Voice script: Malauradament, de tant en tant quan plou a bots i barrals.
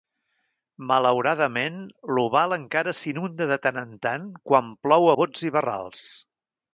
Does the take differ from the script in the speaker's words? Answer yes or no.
yes